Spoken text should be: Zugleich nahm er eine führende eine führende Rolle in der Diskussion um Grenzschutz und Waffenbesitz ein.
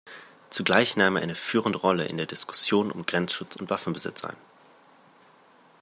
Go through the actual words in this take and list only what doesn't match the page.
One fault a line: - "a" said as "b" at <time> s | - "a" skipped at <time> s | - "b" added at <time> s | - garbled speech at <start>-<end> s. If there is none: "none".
- "eine führende" skipped at 1.8 s